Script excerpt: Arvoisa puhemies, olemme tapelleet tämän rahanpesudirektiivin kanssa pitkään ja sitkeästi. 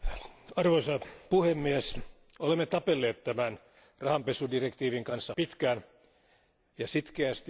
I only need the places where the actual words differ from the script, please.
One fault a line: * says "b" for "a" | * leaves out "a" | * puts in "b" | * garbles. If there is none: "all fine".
all fine